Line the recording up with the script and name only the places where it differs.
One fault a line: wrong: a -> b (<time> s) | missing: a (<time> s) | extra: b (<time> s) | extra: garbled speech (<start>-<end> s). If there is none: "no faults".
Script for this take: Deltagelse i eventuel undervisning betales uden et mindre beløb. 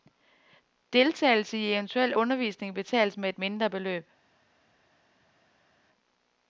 wrong: uden -> med (3.2 s)